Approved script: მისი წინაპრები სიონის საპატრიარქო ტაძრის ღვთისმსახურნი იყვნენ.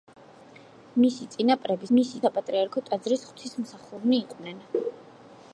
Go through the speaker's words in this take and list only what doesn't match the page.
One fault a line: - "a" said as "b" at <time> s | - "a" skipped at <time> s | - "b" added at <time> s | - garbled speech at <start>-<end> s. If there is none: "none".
- "სიონის" said as "მისი" at 1.9 s